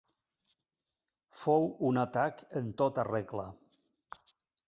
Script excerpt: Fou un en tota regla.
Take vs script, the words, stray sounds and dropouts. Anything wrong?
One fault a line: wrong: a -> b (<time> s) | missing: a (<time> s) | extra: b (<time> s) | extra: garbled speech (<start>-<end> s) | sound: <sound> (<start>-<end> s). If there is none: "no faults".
extra: atac (2.0 s)